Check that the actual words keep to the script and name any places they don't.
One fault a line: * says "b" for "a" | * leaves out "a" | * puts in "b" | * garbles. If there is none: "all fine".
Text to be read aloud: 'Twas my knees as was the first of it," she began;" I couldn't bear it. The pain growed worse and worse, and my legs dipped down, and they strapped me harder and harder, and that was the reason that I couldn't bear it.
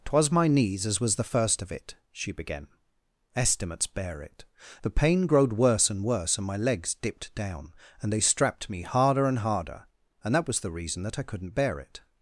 * says "estimates" for "I couldn't"